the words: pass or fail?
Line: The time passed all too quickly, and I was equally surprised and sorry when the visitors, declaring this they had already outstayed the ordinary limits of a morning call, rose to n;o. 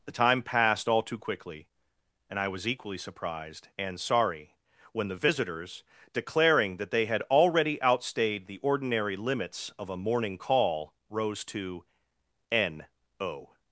fail